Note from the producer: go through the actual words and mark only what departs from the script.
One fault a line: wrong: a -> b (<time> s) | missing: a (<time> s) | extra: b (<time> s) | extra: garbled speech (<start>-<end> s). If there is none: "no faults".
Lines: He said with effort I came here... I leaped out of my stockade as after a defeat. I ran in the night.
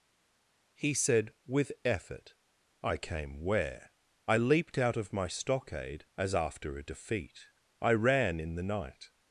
wrong: here -> where (3.4 s)